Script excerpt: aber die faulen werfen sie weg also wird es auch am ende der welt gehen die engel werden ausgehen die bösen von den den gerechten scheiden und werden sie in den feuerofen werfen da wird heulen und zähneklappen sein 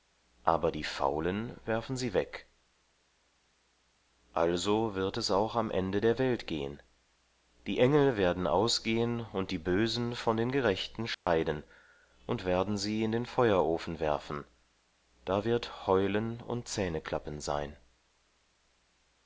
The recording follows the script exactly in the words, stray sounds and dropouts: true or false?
false